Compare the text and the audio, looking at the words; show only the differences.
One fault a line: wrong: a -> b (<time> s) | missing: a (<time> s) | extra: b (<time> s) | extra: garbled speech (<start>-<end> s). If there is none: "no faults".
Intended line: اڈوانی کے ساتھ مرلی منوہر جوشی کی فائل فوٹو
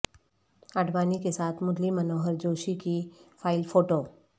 no faults